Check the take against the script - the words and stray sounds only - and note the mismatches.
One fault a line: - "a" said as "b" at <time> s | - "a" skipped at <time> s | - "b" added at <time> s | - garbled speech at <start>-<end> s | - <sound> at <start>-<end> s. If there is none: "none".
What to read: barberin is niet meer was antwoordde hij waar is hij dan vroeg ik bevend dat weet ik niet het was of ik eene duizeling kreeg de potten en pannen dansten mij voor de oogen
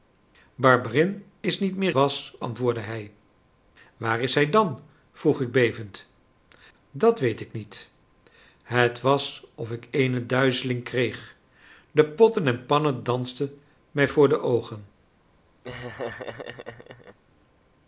- laugh at 15.6-17.2 s